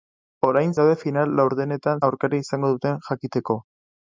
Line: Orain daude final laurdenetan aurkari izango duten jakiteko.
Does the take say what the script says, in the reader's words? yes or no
yes